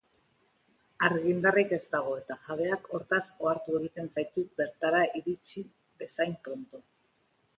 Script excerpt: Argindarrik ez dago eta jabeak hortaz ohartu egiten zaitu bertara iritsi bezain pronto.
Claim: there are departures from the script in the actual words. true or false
false